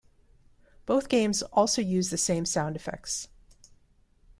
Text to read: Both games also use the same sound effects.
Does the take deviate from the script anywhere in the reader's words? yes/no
no